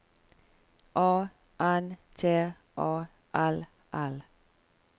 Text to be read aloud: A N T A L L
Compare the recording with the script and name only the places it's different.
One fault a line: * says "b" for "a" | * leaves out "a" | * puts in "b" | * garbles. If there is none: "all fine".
all fine